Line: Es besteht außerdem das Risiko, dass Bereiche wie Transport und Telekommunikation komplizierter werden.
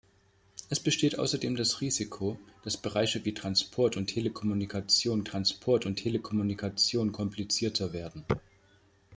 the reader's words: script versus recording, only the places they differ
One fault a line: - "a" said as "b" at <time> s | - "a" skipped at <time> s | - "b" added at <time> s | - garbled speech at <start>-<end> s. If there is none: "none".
- "Transport und Telekommunikation" added at 5.2 s